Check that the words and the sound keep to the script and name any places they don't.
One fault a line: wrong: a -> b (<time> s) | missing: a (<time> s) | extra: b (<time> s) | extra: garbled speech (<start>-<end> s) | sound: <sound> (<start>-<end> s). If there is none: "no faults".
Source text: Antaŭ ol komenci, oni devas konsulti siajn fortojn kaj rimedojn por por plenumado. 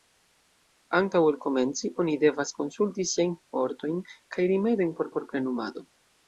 no faults